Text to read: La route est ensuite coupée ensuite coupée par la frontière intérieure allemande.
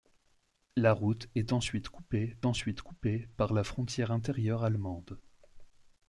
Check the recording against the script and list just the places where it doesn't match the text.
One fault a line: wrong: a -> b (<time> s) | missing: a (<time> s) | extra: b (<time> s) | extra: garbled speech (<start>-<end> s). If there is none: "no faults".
no faults